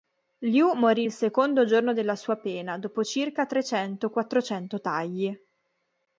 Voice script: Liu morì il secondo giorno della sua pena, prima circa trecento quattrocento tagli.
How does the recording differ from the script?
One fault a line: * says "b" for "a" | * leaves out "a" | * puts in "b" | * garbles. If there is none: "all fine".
* says "dopo" for "prima"